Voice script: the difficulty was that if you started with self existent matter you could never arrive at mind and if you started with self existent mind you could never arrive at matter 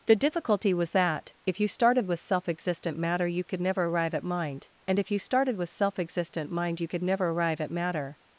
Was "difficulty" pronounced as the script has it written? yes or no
yes